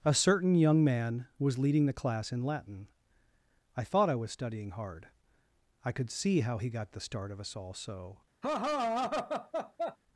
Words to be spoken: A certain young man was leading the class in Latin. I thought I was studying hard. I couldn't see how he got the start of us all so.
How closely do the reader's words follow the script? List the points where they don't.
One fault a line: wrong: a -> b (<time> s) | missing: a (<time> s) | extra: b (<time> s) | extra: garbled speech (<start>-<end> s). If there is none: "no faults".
wrong: couldn't -> could (5.9 s)